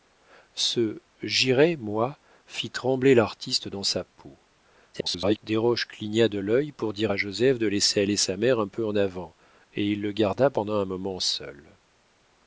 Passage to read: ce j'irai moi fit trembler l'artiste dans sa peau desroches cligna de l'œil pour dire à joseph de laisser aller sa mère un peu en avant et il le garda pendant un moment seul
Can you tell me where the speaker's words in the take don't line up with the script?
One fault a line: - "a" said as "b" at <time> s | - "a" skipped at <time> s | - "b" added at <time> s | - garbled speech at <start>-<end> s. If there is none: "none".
- garbled speech at 4.9-5.4 s